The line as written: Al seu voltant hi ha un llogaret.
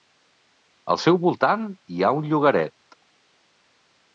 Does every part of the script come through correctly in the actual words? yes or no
yes